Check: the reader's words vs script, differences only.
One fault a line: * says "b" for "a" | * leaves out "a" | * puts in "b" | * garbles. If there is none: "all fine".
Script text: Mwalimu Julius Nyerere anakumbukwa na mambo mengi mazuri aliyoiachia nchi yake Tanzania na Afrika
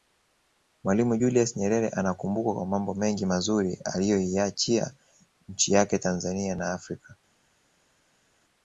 * says "kwa" for "na"